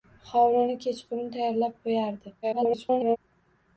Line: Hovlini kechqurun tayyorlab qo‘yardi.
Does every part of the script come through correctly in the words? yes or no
no